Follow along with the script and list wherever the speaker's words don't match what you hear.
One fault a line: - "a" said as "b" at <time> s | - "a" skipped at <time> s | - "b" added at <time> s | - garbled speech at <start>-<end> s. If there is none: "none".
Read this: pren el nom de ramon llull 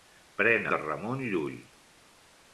- "el nom" skipped at 0.7 s